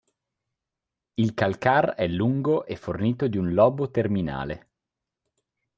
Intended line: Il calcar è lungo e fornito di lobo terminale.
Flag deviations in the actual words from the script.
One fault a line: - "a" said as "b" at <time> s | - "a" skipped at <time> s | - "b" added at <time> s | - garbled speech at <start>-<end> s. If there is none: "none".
- "un" added at 3.4 s